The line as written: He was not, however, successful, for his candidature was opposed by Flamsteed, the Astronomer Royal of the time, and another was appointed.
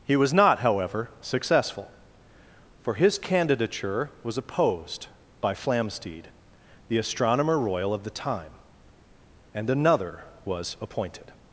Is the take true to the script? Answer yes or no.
yes